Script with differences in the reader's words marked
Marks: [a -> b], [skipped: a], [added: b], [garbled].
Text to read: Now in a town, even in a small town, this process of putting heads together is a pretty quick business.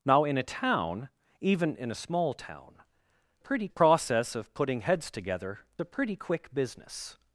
Now in a town, even in a small town, [this -> pretty] process of putting heads together [skipped: is] a pretty quick business.